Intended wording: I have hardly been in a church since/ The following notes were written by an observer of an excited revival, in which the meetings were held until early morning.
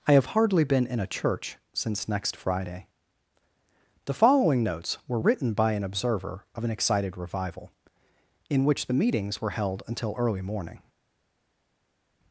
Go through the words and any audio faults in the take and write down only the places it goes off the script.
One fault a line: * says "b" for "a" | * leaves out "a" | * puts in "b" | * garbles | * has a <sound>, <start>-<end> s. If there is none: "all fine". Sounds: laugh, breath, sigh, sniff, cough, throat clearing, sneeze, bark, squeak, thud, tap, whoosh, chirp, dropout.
* puts in "next friday"